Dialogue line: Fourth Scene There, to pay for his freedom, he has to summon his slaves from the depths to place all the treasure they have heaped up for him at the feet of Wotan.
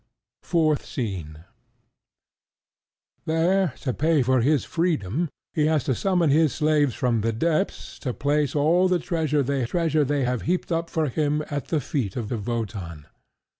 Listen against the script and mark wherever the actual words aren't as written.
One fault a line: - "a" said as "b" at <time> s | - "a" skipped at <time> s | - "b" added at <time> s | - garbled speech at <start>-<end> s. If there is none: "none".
- "treasure they" added at 9.6 s
- "of" added at 12.3 s